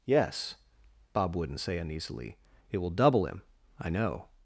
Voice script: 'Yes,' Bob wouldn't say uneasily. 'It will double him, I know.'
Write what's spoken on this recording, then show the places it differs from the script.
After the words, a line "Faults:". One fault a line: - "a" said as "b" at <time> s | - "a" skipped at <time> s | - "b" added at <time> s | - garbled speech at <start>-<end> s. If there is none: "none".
'Yes,' Bob wouldn't say uneasily. 'It will double him, I know.'
Faults:
none